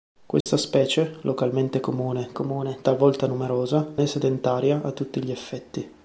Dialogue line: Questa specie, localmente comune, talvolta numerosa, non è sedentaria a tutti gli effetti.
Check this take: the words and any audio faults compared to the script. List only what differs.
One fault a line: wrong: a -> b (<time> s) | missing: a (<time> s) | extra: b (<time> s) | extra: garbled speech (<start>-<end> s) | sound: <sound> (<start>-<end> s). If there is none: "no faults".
sound: dropout (0.4-0.5 s)
extra: comune (2.3 s)
missing: non (4.0 s)